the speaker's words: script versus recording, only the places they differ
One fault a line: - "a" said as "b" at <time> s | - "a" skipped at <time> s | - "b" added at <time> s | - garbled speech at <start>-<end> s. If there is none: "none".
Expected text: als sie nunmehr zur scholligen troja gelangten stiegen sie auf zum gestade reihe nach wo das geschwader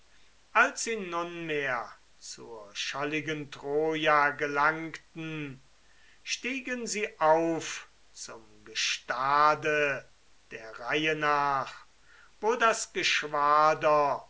- "der" added at 10.5 s